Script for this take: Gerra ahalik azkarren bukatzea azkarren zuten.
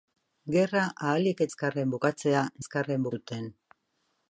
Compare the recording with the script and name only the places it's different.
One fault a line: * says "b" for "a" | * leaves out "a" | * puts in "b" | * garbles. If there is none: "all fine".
all fine